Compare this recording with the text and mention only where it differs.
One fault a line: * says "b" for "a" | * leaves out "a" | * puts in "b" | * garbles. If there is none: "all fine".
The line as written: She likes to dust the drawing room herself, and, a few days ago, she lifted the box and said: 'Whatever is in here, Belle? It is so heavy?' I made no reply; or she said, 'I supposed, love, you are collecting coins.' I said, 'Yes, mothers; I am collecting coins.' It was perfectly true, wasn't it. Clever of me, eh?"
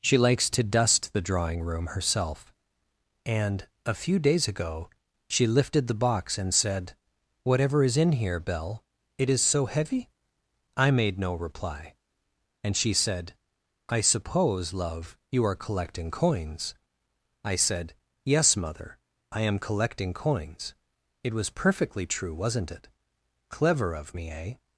* says "and" for "or"
* says "suppose" for "supposed"
* says "mother" for "mothers"